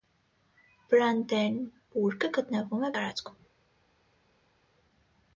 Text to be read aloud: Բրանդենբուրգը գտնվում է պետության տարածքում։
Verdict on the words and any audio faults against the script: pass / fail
fail